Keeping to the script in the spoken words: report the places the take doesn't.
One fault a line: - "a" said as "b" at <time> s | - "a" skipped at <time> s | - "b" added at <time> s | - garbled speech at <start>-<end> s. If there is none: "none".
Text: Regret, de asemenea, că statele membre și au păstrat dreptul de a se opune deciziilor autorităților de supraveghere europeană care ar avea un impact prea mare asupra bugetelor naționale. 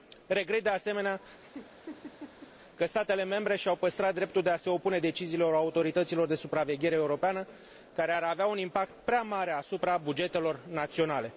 none